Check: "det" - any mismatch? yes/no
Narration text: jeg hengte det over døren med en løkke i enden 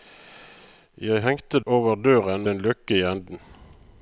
yes